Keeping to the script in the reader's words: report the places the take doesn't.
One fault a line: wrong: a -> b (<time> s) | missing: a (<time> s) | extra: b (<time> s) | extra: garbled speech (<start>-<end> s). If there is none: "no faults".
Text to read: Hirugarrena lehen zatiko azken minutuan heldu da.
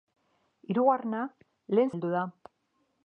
missing: zatiko azken minutuan (1.9 s)